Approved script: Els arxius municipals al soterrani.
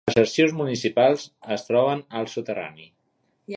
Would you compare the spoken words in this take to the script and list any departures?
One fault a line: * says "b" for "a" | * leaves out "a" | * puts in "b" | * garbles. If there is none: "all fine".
* puts in "es troben"